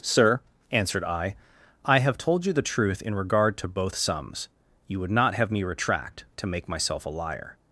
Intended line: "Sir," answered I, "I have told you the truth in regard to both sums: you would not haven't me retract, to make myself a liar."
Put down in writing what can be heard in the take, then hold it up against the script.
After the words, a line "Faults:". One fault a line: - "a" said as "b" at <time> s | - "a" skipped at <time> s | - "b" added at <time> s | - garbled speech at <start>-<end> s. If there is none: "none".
"Sir," answered I, "I have told you the truth in regard to both sums: you would not have me retract, to make myself a liar."
Faults:
- "haven't" said as "have" at 5.3 s